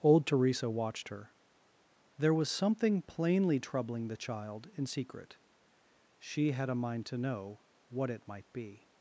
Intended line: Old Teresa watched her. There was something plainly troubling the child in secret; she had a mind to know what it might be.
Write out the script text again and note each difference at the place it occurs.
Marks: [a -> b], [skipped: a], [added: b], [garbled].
Old Teresa watched her. There was something plainly troubling the child in secret; she had a mind to know what it might be.